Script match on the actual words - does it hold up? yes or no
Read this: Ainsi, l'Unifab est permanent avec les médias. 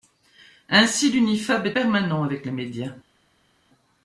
yes